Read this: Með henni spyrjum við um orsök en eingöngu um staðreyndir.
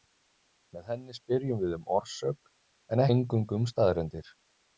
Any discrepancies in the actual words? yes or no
no